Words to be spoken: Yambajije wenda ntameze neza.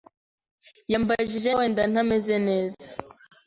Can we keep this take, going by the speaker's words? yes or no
yes